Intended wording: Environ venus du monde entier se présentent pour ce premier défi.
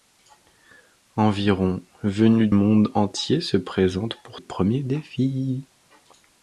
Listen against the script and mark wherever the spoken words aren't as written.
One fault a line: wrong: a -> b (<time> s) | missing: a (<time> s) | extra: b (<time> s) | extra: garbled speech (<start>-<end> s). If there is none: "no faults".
missing: du (2.5 s)
missing: ce (4.4 s)